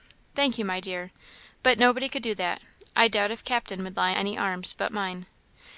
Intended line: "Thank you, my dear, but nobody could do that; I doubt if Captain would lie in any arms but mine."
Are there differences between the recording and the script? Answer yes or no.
yes